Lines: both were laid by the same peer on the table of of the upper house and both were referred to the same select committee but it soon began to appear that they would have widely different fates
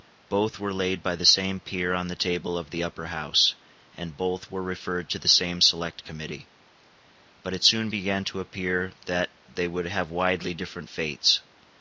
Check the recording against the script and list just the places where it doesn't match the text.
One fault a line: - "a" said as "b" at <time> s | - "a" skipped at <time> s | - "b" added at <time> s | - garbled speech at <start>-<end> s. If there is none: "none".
- "of" skipped at 2.7 s